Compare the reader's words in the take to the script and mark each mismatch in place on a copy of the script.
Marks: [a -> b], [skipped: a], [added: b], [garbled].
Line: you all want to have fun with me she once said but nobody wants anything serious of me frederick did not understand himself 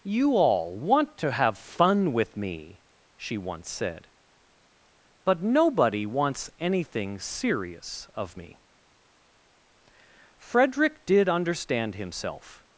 you all want to have fun with me she once said but nobody wants anything serious of me frederick did [skipped: not] understand himself